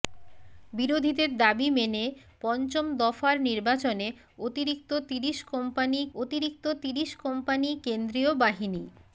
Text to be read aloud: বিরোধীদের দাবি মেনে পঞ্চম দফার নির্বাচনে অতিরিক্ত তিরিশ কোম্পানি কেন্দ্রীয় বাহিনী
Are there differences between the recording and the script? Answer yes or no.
yes